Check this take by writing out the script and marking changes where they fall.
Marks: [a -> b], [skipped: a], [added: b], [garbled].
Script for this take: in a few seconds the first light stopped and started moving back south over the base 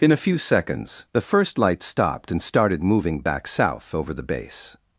in a few seconds the first light stopped and started moving back south over the base